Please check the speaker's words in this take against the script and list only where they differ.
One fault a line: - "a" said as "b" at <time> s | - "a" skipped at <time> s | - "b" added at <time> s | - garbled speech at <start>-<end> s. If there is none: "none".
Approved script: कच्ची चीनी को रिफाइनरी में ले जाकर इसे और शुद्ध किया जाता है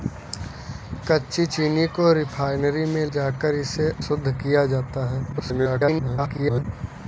- "ले" skipped at 3.0 s
- "और" skipped at 3.9 s
- garbled speech at 5.3-6.6 s